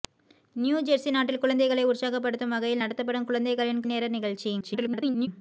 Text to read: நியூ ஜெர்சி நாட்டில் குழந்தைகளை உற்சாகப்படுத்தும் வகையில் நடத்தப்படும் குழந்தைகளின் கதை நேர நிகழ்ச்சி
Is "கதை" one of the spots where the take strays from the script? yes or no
yes